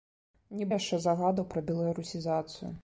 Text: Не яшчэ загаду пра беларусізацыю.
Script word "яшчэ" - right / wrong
right